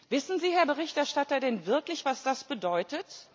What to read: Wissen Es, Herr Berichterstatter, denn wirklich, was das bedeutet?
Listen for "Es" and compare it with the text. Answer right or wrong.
wrong